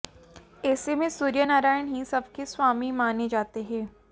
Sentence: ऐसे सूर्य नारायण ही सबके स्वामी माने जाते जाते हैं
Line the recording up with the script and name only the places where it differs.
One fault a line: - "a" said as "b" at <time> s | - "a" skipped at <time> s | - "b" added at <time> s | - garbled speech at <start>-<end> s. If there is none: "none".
- "में" added at 0.9 s
- "जाते" skipped at 3.6 s